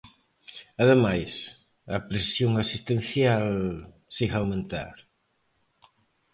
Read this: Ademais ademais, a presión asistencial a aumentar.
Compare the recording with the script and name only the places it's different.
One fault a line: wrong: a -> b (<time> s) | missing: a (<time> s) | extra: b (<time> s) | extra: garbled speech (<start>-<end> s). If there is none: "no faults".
missing: ademais (1.3 s)
extra: segue (4.2 s)